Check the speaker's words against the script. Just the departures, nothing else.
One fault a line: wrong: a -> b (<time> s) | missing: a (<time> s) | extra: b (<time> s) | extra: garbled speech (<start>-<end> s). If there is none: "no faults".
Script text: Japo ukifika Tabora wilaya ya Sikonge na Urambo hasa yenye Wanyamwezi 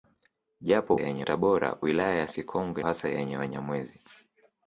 wrong: ukifika -> yenye (1.0 s)
missing: na Urambo (2.8 s)